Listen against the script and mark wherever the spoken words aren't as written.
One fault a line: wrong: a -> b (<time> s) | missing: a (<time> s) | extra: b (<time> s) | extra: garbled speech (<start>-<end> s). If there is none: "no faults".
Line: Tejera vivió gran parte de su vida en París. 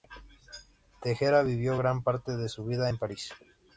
no faults